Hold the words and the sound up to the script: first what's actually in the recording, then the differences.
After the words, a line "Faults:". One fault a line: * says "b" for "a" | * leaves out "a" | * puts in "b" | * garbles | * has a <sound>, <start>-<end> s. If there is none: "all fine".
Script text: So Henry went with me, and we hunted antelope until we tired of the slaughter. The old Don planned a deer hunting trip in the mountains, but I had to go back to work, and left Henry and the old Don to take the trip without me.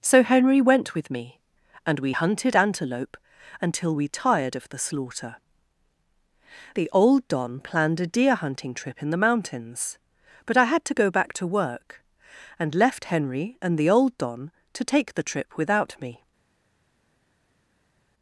So Henry went with me, and we hunted antelope until we tired of the slaughter. The old Don planned a deer hunting trip in the mountains, but I had to go back to work, and left Henry and the old Don to take the trip without me.
Faults:
all fine